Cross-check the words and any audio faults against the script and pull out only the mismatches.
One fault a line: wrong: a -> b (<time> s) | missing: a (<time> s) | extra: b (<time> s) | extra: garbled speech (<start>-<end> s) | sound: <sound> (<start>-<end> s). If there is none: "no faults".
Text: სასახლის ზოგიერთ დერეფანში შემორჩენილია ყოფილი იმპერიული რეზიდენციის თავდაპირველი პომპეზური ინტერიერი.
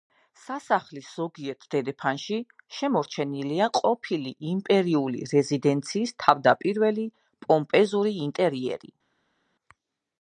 no faults